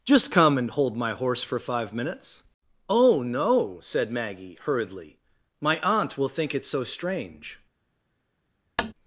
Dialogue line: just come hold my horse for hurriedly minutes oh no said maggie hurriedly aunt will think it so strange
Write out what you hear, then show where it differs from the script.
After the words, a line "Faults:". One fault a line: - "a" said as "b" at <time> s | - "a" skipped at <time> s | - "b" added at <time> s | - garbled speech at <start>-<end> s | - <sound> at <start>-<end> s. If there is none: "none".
just come and hold my horse for five minutes oh no said maggie hurriedly my aunt will think it so strange
Faults:
- "and" added at 0.6 s
- "hurriedly" said as "five" at 1.6 s
- "my" added at 5.6 s
- tap at 8.8-8.9 s